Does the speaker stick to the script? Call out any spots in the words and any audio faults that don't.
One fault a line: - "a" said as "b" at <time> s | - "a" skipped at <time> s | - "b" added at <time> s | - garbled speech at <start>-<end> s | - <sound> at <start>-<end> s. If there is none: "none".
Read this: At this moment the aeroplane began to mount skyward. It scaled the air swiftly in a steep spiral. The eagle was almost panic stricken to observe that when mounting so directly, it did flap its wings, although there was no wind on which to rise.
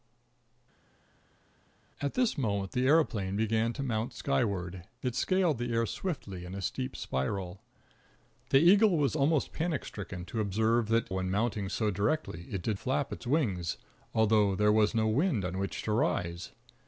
none